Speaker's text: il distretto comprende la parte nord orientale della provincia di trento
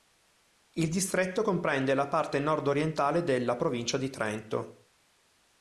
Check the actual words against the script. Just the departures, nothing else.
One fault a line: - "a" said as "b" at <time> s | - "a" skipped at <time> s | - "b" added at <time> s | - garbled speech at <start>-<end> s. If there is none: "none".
none